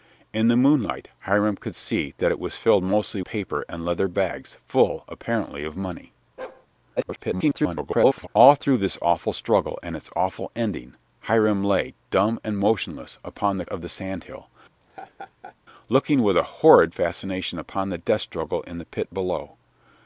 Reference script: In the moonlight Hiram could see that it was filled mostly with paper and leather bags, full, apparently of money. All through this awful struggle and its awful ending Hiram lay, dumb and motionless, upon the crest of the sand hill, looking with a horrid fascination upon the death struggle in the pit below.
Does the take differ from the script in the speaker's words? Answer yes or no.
yes